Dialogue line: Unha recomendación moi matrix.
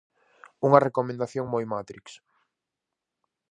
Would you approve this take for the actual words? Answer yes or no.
yes